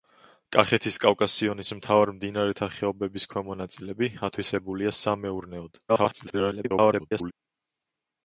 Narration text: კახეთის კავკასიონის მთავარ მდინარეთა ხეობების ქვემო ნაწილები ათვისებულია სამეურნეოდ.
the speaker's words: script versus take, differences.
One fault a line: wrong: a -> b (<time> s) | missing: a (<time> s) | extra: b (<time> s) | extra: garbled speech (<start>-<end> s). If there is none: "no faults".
extra: garbled speech (5.9-7.3 s)